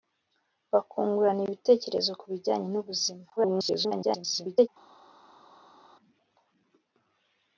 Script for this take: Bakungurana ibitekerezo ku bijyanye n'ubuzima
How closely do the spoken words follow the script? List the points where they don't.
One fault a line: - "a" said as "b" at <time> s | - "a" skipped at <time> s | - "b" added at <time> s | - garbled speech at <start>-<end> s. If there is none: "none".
- garbled speech at 3.4-4.7 s